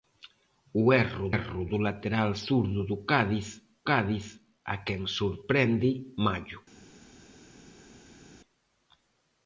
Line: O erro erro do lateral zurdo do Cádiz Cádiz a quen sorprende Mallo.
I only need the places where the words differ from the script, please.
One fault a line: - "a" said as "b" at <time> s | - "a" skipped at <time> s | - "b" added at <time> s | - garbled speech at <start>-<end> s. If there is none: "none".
none